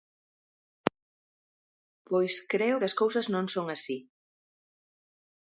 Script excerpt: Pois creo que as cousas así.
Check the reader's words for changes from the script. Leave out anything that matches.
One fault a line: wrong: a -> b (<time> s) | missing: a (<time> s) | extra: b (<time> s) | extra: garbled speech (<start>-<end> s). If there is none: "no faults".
extra: non son (3.3 s)